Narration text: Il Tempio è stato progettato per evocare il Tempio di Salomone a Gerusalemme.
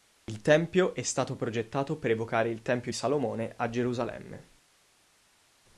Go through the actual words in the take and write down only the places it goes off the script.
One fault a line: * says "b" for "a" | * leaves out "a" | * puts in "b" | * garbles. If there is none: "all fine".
* leaves out "di"